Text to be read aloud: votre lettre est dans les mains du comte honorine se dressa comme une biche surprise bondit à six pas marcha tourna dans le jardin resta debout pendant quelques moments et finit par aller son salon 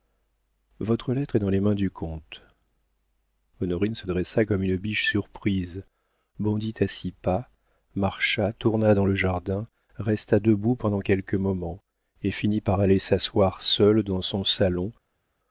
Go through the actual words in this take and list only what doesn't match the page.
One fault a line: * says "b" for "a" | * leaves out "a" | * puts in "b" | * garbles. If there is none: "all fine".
* puts in "s'asseoir seule dans"